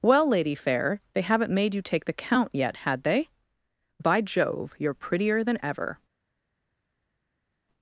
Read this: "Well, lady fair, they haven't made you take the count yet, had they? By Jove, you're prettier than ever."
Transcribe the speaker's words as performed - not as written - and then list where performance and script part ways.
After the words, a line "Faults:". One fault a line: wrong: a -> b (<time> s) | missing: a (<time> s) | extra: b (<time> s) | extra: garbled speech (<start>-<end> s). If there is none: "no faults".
"Well, lady fair, they haven't made you take the count yet, had they? By Jove, you're prettier than ever."
Faults:
no faults